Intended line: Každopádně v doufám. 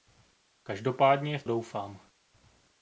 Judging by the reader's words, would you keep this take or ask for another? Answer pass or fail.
pass